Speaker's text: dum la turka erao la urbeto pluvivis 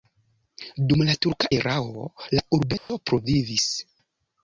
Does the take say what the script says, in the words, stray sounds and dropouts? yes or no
no